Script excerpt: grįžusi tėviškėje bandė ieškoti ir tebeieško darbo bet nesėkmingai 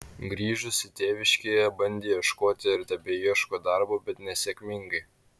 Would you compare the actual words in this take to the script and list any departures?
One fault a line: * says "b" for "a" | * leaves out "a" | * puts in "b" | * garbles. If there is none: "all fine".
all fine